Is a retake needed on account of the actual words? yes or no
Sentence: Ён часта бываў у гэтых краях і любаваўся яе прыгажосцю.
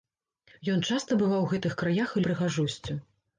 yes